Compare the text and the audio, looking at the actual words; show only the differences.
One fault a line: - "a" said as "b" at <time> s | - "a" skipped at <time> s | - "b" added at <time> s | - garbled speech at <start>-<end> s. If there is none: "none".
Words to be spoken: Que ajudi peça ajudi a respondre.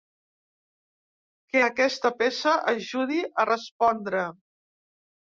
- "ajudi" said as "aquesta" at 1.7 s